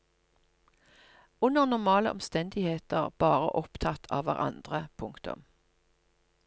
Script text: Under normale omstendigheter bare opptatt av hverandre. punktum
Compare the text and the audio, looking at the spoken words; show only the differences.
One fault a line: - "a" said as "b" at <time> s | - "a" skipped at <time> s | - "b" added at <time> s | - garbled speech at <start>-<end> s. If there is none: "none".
none